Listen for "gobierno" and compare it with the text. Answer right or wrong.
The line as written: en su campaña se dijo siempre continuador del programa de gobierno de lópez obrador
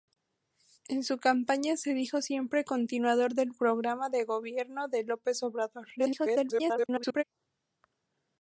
right